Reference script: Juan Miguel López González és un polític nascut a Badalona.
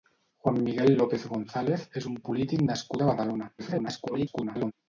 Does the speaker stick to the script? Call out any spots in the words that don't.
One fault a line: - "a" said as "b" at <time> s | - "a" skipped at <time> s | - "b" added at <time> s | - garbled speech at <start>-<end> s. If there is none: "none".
- garbled speech at 3.6-4.7 s